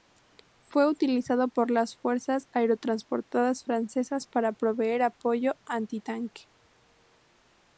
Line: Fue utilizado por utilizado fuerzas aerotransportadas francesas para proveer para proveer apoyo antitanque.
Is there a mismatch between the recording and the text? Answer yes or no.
yes